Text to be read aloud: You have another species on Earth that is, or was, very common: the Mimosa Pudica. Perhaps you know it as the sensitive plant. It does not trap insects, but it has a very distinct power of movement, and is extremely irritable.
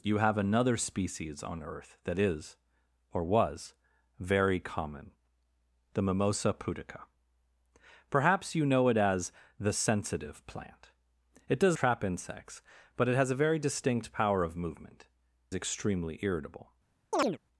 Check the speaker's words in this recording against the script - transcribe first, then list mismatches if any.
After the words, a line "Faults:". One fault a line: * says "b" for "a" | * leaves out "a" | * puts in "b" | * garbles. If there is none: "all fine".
You have another species on Earth that is, or was, very common: the Mimosa Pudica. Perhaps you know it as the sensitive plant. It does trap insects, but it has a very distinct power of movement, extremely irritable.
Faults:
* leaves out "not"
* leaves out "and is"